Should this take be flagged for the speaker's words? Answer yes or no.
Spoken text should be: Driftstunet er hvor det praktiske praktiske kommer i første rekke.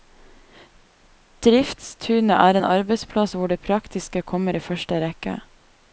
yes